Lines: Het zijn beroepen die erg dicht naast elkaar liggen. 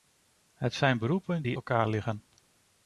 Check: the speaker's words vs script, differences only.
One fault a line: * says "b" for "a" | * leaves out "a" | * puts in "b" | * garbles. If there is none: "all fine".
* leaves out "erg dicht naast"